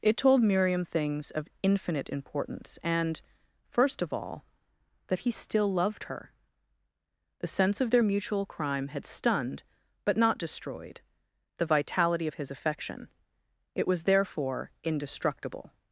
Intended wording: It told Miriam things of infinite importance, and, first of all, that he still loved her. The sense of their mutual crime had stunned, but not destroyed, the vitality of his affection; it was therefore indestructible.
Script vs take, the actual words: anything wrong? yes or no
no